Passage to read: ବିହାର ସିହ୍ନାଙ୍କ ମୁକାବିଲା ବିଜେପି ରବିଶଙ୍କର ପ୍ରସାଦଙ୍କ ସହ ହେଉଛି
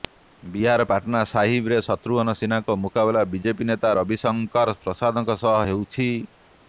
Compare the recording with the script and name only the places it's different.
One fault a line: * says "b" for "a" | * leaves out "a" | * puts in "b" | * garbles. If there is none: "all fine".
* puts in "ପାଟନା ସାହିବରେ ଶତ୍ରୁଘ୍ନ"
* puts in "ନେତା"